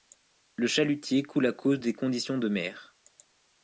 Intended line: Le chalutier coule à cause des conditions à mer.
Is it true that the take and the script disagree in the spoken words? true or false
true